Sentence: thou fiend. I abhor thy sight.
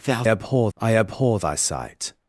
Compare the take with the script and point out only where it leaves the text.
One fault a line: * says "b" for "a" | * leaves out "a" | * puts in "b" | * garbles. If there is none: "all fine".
* says "abhor" for "fiend"